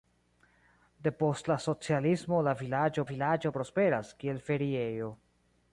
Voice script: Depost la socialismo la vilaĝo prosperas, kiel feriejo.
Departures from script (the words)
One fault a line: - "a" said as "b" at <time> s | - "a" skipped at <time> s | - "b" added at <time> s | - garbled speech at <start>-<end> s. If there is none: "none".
- "vilaĝo" added at 3.1 s